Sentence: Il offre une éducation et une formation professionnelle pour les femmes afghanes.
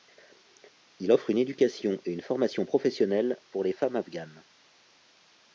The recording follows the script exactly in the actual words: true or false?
true